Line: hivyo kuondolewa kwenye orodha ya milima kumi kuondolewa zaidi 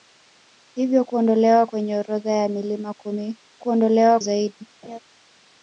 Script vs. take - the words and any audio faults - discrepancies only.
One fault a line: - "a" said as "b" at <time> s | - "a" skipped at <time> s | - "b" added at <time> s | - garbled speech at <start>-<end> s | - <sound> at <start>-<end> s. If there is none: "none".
- laugh at 4.8-5.0 s